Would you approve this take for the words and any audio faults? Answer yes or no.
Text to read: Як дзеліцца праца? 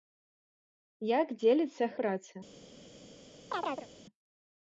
no